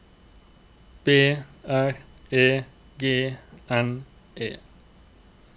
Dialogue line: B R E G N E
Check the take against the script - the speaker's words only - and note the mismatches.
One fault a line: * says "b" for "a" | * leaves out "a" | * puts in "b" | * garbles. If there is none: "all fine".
all fine